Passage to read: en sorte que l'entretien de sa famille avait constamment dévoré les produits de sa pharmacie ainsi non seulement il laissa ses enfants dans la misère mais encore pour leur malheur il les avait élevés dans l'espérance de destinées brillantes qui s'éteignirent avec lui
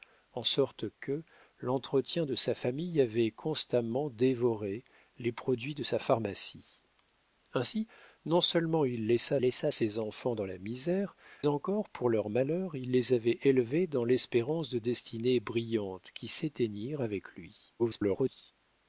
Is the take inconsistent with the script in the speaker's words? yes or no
yes